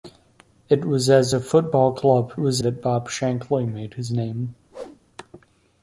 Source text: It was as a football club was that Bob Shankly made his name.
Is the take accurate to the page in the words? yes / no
yes